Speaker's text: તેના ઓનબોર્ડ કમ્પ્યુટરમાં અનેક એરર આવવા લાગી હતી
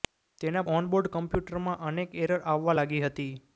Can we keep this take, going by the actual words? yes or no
yes